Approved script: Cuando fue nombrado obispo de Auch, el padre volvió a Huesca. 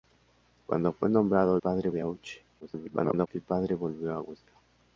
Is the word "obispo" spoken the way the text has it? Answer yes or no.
no